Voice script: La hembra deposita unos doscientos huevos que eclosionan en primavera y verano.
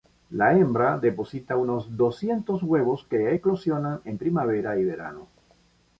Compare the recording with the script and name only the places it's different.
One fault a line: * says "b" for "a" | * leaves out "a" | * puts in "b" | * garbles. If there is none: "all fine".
all fine